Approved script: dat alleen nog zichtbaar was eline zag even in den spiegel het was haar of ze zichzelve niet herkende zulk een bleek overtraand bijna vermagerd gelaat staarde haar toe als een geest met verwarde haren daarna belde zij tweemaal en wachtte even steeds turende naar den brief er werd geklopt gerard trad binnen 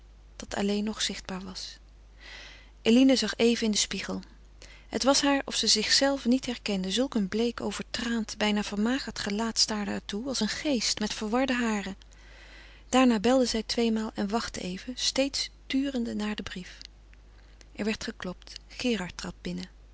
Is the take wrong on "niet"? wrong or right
right